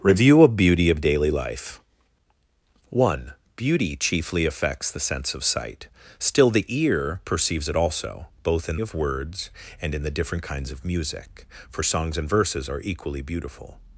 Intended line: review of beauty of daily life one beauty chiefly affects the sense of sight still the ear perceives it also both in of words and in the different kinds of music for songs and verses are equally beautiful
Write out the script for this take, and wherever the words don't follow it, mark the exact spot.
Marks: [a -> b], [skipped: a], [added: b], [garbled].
review of beauty of daily life one beauty chiefly affects the sense of sight still the ear perceives it also both in of words and in the different kinds of music for songs and verses are equally beautiful